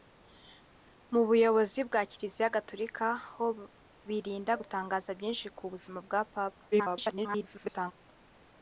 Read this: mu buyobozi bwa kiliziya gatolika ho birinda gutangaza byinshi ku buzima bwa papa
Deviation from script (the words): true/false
true